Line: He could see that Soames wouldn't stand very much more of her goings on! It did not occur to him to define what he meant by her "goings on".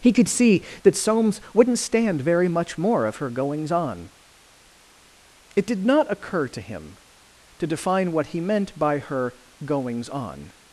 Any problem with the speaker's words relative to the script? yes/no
no